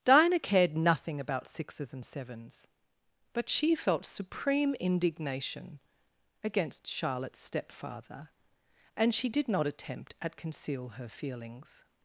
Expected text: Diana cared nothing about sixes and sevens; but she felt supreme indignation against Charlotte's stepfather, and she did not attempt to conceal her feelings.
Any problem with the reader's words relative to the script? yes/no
yes